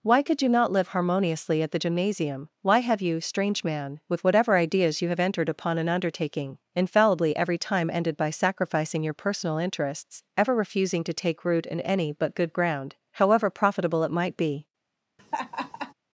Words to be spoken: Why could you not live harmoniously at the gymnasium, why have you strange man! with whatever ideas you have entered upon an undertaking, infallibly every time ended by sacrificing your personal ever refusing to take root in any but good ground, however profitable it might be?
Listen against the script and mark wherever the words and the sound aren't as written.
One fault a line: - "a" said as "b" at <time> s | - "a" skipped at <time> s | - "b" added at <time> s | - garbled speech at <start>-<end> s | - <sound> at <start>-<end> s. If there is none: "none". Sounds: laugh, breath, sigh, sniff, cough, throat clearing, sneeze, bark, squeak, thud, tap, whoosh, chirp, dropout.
- "interests" added at 9.6 s
- laugh at 15.2-15.9 s